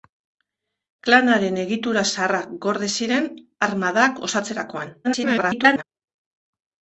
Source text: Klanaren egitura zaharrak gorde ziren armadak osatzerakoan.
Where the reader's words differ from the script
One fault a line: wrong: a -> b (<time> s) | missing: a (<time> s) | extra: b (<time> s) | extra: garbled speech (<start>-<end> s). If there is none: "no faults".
extra: garbled speech (5.0-5.8 s)